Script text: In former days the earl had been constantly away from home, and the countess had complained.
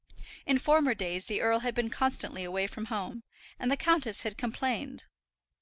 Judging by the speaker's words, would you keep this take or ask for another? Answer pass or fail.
pass